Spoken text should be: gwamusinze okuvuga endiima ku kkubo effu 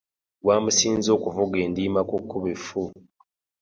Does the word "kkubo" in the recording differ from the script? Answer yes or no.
no